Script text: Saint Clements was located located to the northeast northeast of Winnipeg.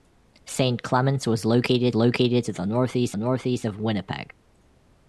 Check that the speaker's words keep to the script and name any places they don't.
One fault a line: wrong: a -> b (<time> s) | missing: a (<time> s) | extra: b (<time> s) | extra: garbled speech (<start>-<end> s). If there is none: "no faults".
no faults